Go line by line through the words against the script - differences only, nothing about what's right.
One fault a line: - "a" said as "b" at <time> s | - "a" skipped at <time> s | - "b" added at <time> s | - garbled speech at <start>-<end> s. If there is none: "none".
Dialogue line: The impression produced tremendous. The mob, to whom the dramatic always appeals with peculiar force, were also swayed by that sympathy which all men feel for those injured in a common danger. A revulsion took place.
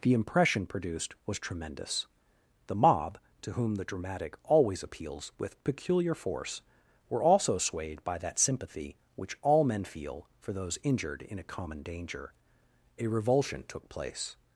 - "was" added at 1.2 s